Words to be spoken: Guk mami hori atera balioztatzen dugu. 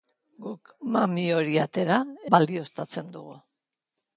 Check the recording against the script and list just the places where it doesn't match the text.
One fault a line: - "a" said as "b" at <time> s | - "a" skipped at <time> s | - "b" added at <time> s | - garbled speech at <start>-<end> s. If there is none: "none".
none